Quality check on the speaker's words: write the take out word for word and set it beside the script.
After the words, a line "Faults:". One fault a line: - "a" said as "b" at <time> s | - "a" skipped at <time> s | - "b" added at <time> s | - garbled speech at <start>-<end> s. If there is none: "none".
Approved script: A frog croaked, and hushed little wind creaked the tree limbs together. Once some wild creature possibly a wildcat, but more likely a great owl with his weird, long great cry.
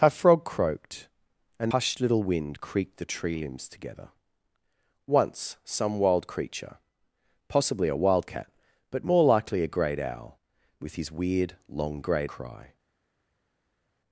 A frog croaked, and hushed little wind creaked the tree limbs together. Once some wild creature possibly a wildcat, but more likely a great owl with his weird, long great cry.
Faults:
none